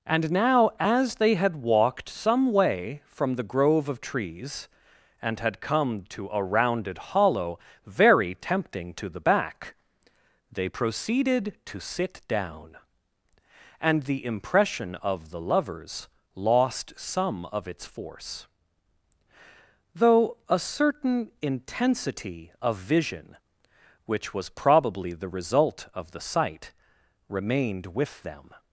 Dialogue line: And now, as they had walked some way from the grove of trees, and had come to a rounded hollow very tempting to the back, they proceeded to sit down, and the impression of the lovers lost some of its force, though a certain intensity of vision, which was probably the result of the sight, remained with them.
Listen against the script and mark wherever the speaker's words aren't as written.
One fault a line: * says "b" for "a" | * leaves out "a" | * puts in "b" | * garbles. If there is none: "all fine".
all fine